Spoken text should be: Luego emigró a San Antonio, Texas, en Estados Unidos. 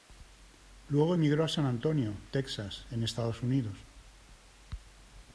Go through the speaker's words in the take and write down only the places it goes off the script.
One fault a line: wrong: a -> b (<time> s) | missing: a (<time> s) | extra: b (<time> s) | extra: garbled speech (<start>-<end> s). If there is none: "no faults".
no faults